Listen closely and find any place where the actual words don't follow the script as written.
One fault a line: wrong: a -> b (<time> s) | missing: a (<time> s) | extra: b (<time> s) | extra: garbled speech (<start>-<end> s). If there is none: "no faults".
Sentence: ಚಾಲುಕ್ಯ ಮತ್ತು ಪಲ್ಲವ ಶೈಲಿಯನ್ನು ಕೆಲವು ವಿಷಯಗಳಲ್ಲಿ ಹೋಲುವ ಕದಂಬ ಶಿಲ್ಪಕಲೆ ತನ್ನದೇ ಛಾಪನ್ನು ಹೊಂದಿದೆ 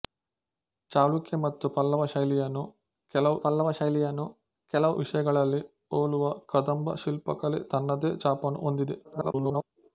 extra: ಪಲ್ಲವ ಶೈಲಿಯನ್ನು ಕೆಲವು (3.4 s)
extra: garbled speech (9.0-9.6 s)